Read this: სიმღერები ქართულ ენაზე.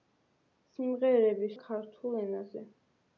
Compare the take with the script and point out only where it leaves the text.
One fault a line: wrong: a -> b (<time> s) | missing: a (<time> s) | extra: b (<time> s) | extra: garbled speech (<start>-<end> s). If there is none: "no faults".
no faults